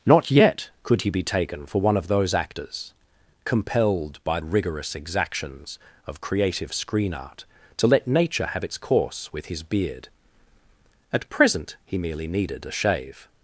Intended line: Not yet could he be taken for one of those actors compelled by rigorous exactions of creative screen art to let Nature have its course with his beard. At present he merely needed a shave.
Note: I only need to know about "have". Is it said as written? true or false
true